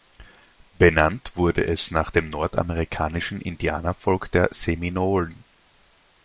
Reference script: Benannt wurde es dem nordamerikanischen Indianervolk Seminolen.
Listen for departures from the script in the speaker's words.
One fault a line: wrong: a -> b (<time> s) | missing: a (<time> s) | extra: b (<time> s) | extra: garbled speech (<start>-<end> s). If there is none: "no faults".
extra: nach (1.9 s)
extra: der (4.3 s)